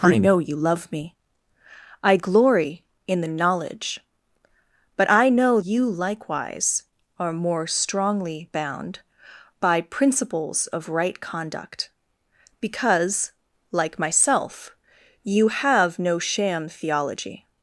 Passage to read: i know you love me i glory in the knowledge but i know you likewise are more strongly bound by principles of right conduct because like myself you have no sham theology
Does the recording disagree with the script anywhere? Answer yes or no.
no